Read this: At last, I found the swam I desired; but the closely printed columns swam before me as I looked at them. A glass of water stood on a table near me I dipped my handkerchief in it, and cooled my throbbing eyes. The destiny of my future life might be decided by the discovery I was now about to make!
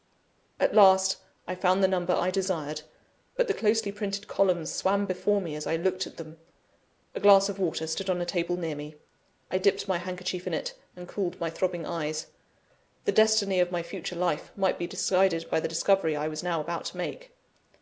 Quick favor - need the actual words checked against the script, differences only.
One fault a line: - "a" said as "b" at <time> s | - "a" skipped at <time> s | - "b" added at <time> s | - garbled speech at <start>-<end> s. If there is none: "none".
- "swam" said as "number" at 1.9 s